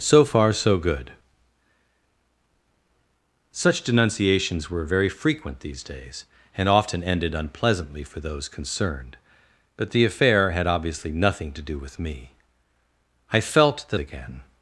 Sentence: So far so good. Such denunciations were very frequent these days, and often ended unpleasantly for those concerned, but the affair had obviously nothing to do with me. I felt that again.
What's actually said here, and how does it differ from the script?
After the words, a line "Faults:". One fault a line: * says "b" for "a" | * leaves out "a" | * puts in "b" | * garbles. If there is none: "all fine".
So far so good. Such denunciations were very frequent these days, and often ended unpleasantly for those concerned, but the affair had obviously nothing to do with me. I felt that again.
Faults:
all fine